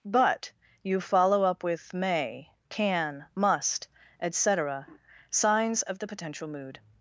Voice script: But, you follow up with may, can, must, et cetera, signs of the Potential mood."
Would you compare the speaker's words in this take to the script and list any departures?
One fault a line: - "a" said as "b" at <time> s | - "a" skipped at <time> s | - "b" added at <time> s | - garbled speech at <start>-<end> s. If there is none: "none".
none